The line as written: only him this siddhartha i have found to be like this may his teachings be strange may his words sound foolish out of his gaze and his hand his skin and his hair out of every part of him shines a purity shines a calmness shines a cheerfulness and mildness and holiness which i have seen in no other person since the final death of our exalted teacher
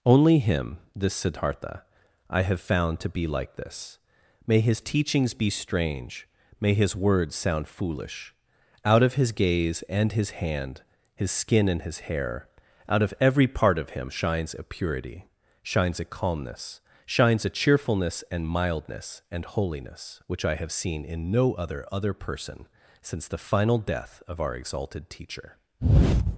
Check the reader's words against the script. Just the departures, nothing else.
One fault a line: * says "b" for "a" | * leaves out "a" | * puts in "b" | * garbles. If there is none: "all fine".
* puts in "other"